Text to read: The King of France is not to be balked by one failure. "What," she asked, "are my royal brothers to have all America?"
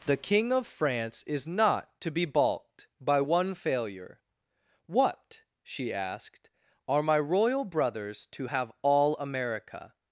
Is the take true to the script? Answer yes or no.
yes